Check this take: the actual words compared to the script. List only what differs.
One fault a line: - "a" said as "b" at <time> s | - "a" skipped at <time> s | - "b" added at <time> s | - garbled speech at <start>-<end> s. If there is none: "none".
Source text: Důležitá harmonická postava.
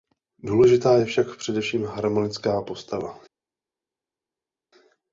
- "je však především" added at 1.0 s